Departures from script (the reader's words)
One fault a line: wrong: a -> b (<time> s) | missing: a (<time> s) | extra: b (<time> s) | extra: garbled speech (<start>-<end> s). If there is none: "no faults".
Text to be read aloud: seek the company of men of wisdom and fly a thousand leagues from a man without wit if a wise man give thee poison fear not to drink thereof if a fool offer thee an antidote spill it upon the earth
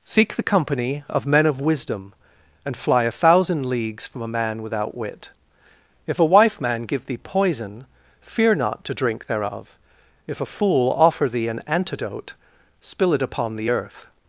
wrong: wise -> wife (6.2 s)